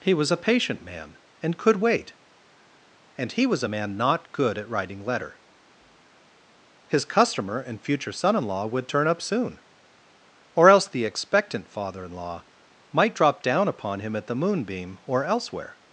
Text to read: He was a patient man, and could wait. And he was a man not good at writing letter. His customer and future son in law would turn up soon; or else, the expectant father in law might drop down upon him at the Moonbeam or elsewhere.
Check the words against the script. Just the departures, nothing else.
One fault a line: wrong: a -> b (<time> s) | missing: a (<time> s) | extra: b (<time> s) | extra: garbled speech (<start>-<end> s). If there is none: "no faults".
no faults